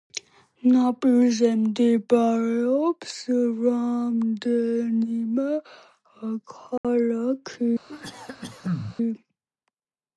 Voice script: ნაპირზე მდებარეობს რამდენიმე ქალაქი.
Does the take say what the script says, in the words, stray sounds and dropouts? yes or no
no